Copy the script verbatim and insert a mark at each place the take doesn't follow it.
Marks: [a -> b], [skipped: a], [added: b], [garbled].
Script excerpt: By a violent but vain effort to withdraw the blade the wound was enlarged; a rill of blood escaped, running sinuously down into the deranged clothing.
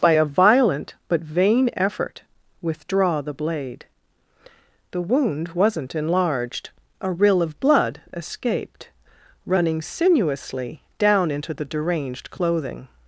By a violent but vain effort [skipped: to] withdraw the blade the wound [was -> wasn't] enlarged; a rill of blood escaped, running sinuously down into the deranged clothing.